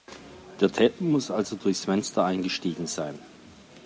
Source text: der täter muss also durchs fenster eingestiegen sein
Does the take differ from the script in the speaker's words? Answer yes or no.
no